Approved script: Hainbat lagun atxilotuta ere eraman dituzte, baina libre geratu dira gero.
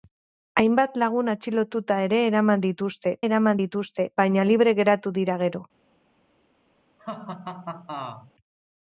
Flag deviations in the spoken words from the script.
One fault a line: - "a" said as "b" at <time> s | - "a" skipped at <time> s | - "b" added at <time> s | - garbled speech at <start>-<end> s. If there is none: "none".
- "eraman dituzte" added at 3.3 s